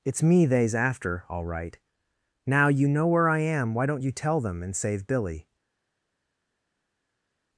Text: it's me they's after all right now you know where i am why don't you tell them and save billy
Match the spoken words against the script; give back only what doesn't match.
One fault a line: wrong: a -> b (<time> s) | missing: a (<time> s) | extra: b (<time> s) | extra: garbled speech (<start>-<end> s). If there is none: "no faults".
no faults